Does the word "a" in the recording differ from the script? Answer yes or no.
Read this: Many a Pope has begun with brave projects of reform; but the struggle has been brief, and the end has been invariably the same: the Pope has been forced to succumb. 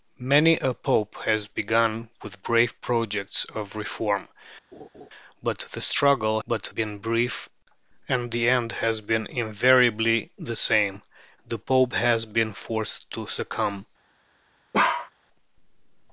no